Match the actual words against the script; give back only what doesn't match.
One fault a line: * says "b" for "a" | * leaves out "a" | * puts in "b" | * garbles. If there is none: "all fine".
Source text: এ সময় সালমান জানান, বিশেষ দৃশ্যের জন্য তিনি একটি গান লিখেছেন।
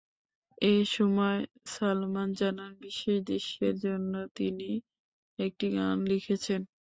all fine